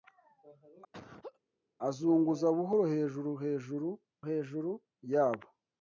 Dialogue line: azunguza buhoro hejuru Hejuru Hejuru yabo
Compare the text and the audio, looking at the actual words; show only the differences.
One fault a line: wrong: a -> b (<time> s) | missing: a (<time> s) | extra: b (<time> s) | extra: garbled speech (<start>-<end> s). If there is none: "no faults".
no faults